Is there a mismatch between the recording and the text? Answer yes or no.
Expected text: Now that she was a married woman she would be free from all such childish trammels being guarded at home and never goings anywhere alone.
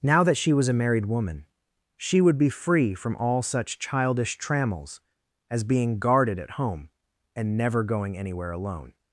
yes